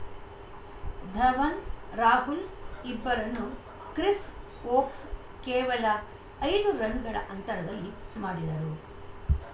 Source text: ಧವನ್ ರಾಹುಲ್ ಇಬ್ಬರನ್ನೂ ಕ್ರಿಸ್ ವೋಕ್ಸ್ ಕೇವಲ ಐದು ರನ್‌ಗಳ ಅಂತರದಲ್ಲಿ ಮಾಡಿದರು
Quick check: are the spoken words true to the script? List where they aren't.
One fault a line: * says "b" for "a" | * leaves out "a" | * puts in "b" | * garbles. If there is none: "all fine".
all fine